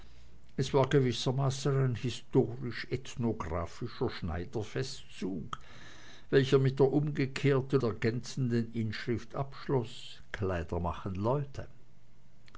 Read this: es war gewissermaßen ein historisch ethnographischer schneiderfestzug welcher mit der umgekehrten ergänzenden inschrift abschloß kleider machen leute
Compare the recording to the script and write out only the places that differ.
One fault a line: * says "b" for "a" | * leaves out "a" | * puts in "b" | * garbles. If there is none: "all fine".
all fine